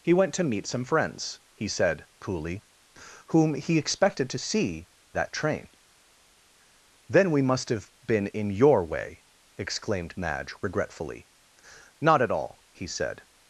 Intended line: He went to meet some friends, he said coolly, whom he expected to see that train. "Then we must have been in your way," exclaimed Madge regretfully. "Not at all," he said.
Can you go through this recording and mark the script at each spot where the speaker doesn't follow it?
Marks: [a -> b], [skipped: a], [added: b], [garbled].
He went to meet some friends, he said coolly, whom he expected to see that train. "Then we must have been in your way," exclaimed Madge regretfully. "Not at all," he said.